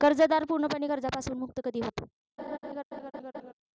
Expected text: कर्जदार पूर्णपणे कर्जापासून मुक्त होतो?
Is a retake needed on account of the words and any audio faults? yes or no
yes